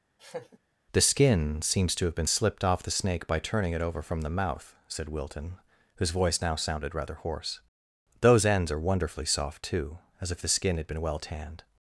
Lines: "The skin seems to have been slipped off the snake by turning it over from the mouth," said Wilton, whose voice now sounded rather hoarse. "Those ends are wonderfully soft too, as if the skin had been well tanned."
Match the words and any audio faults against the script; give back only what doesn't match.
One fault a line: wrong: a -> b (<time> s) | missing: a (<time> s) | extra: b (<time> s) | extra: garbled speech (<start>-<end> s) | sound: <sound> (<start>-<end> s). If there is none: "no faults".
sound: laugh (0.2-0.6 s)